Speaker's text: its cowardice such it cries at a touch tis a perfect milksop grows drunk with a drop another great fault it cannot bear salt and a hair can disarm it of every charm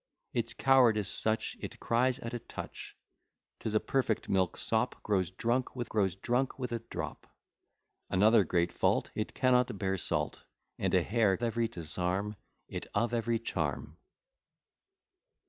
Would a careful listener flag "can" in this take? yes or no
yes